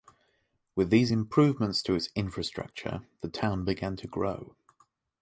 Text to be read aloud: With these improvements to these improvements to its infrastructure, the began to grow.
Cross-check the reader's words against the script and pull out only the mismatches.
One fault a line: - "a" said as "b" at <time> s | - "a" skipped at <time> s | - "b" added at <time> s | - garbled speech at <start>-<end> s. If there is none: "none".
- "these improvements to" skipped at 2.0 s
- "town" added at 3.3 s